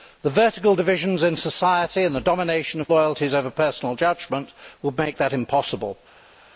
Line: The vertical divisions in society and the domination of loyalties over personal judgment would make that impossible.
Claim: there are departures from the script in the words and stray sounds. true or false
false